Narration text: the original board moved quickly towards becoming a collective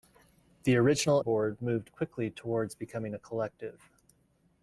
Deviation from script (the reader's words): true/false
false